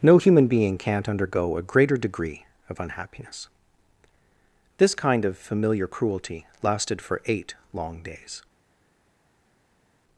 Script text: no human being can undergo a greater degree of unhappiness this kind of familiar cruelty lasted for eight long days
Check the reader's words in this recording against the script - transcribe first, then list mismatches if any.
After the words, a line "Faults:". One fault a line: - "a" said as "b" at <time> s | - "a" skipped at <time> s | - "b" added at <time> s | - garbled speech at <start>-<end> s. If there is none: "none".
no human being can't undergo a greater degree of unhappiness this kind of familiar cruelty lasted for eight long days
Faults:
- "can" said as "can't" at 0.8 s